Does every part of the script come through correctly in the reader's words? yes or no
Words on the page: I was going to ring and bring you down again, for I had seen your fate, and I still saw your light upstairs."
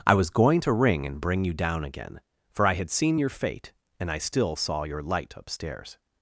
yes